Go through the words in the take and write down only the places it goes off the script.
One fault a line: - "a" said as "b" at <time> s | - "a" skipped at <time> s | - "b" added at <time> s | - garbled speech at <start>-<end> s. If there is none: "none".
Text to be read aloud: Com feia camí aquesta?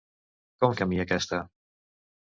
- "feia" skipped at 0.7 s